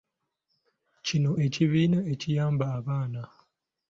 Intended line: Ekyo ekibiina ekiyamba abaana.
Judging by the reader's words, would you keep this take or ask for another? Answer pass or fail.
fail